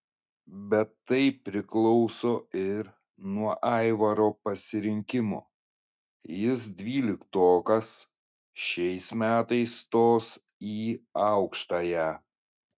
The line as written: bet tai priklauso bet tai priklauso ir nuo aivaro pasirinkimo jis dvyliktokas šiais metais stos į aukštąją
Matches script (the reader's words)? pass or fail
fail